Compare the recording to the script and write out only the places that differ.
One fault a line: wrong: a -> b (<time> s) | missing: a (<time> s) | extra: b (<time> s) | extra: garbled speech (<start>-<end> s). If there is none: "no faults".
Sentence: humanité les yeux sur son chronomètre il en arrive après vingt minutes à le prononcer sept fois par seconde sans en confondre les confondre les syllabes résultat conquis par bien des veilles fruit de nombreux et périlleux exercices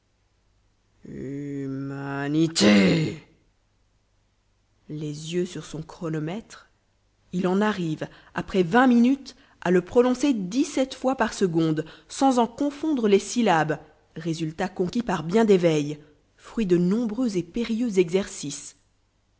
extra: dix (10.3 s)
missing: confondre les (13.2 s)